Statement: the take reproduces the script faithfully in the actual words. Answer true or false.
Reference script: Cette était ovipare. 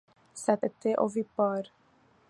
true